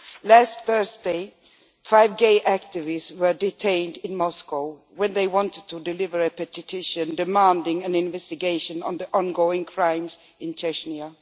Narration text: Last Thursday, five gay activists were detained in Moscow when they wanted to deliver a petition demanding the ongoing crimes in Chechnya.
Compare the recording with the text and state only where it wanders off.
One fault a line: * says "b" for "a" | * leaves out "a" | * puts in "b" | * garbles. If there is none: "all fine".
* puts in "an investigation into"